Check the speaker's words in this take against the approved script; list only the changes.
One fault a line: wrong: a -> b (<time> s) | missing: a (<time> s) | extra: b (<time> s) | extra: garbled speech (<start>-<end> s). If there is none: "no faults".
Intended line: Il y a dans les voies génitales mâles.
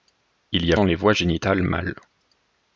no faults